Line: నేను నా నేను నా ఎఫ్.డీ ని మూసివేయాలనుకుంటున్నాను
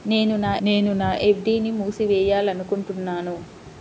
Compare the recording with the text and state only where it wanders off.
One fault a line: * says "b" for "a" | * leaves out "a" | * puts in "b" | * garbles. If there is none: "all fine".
all fine